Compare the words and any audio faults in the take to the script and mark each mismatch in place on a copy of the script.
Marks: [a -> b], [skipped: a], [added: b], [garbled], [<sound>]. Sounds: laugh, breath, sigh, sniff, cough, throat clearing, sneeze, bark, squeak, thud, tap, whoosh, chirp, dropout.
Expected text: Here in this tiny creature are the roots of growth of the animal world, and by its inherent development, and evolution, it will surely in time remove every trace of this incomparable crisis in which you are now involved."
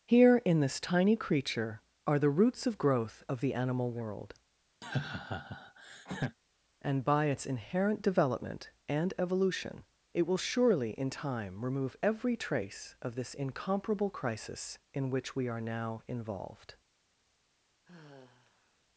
Here in this tiny creature are the roots of growth of the animal world, [laugh] and by its inherent development, and evolution, it will surely in time remove every trace of this incomparable crisis in which [you -> we] are now involved." [sigh]